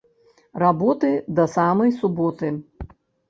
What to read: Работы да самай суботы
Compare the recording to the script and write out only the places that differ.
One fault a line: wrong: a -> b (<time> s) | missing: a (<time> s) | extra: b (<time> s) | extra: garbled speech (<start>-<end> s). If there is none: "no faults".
no faults